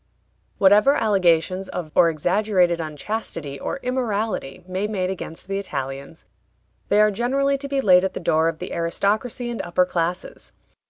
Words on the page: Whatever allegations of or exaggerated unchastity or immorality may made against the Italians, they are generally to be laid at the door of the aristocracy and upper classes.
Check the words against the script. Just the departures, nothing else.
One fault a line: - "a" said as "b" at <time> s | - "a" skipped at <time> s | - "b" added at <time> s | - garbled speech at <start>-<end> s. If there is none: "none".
none